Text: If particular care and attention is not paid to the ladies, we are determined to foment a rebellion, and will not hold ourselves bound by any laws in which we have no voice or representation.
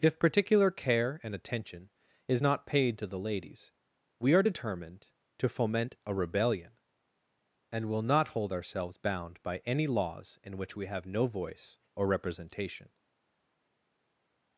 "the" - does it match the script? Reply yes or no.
yes